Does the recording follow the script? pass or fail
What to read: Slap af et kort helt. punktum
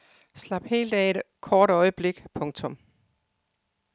fail